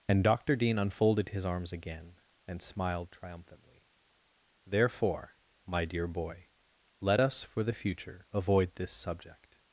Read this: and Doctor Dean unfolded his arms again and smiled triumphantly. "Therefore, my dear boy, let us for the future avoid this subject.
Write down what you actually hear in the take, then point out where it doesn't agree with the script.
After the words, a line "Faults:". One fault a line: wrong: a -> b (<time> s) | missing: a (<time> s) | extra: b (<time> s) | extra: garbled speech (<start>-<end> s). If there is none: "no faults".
and Doctor Dean unfolded his arms again and smiled triumphantly. "Therefore, my dear boy, let us for the future avoid this subject.
Faults:
no faults